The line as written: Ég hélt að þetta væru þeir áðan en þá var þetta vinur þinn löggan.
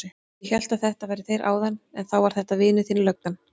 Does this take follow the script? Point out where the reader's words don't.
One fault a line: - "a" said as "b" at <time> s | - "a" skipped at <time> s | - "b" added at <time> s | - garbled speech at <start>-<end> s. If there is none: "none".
none